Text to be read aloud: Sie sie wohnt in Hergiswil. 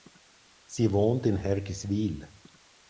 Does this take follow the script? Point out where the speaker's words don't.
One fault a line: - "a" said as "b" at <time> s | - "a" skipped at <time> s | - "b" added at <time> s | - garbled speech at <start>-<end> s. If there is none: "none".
- "sie" skipped at 0.9 s